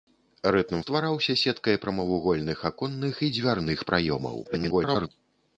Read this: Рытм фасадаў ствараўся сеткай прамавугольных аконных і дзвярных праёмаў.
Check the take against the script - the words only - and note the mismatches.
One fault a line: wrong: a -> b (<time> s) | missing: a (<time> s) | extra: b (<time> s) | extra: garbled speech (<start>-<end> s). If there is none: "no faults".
missing: фасадаў (0.8 s)
extra: garbled speech (4.4-5.1 s)